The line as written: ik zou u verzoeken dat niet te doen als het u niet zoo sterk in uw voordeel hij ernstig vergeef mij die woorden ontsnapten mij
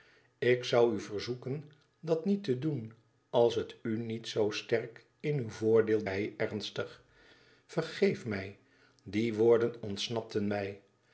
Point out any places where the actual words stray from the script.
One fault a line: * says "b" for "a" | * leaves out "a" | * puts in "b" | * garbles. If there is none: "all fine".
all fine